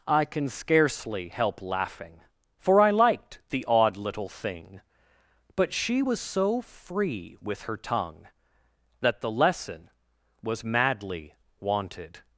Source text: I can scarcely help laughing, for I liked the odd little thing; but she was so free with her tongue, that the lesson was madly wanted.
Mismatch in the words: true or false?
false